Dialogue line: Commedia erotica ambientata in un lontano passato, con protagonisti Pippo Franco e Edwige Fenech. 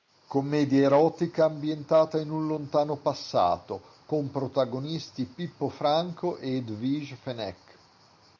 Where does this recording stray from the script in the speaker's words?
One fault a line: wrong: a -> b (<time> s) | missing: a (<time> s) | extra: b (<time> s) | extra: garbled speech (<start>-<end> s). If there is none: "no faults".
no faults